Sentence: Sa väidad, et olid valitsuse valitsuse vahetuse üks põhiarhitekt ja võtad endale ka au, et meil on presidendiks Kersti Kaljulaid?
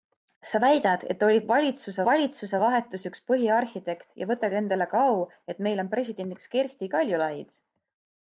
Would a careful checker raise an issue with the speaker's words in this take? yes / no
no